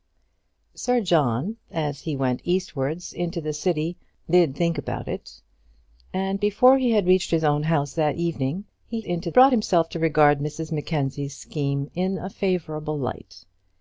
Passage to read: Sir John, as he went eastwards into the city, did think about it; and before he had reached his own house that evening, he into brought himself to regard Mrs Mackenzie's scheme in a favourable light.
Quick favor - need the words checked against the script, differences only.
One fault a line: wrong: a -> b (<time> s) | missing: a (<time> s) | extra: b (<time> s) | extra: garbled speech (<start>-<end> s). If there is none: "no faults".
no faults